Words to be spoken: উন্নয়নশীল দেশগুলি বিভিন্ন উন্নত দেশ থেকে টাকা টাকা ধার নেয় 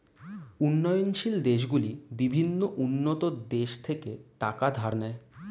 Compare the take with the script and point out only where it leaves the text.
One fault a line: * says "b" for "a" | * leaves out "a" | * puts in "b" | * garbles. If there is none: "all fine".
* leaves out "টাকা"